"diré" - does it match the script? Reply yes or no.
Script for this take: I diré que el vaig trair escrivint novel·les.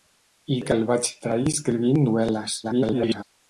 no